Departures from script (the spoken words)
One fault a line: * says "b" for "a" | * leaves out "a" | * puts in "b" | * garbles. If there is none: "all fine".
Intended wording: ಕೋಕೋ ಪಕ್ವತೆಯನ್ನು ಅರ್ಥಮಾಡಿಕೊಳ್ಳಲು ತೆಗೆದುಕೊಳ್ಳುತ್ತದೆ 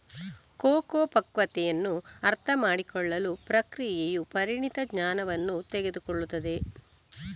* puts in "ಪ್ರಕ್ರಿಯೆಯು ಪರಿಣಿತ ಜ್ಞಾನವನ್ನು"